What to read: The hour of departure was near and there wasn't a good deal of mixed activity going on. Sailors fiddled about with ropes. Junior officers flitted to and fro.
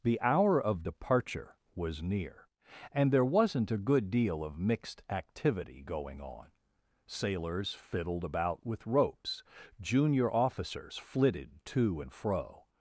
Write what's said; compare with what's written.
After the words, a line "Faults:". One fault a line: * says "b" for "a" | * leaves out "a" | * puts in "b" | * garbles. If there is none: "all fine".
The hour of departure was near and there wasn't a good deal of mixed activity going on. Sailors fiddled about with ropes. Junior officers flitted to and fro.
Faults:
all fine